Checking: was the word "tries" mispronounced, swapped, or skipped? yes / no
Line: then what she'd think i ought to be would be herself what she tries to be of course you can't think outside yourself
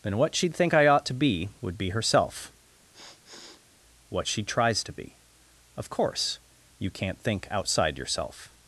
no